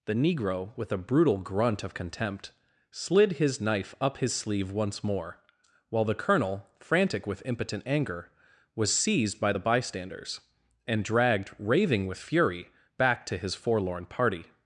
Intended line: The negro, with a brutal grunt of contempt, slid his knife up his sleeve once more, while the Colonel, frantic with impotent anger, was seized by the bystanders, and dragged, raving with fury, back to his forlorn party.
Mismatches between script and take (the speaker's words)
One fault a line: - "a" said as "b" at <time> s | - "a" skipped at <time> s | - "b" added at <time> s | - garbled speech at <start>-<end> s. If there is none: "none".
none